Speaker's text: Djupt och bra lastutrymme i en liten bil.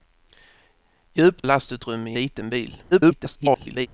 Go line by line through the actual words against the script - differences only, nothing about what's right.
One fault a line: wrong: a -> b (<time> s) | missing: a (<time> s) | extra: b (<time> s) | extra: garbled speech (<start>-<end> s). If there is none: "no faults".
missing: och bra (1.5 s)
missing: en (2.2 s)
extra: garbled speech (2.9-3.9 s)